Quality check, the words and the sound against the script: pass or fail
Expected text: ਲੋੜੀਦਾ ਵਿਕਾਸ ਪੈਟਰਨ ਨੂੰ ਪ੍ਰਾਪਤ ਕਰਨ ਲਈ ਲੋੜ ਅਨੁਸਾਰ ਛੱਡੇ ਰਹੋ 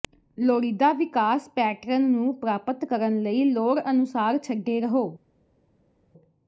pass